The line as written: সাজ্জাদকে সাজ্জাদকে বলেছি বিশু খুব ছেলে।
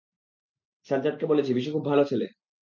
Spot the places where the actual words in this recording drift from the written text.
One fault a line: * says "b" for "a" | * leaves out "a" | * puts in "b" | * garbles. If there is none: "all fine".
* leaves out "সাজ্জাদকে"
* puts in "ভালো"